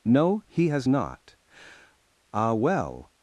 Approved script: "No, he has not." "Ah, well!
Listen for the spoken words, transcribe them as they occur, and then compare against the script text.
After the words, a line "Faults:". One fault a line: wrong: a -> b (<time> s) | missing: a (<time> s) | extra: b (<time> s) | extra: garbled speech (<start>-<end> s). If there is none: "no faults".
"No, he has not." "Ah, well!
Faults:
no faults